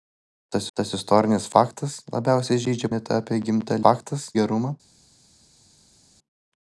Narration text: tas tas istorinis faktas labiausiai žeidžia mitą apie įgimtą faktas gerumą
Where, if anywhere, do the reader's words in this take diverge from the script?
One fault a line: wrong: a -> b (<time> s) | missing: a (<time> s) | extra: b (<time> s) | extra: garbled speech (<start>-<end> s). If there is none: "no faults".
no faults